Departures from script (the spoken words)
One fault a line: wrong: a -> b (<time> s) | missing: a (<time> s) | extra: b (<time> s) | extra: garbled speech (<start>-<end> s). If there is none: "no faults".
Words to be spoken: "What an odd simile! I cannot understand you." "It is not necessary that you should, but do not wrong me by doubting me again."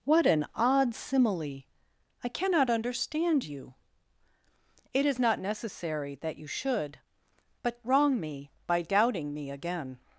missing: do not (7.8 s)